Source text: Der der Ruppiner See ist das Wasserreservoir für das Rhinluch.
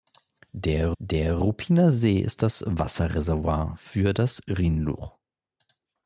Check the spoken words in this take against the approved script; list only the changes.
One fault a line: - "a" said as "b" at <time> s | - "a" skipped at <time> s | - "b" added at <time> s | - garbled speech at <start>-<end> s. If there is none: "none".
none